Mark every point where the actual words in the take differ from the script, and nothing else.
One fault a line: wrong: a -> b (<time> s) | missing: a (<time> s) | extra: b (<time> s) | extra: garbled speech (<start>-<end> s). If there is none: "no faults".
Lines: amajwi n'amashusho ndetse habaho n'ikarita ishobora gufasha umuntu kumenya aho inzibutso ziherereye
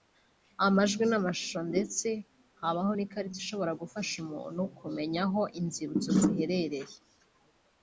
no faults